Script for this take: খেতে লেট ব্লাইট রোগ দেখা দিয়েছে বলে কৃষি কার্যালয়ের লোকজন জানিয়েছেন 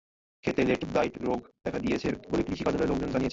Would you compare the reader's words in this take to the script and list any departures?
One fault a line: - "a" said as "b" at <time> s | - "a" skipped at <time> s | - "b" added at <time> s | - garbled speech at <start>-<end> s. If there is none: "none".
none